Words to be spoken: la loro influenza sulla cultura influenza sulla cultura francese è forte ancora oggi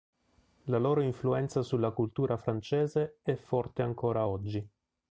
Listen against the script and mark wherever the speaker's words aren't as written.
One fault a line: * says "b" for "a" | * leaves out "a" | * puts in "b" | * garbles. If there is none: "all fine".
* leaves out "influenza sulla cultura"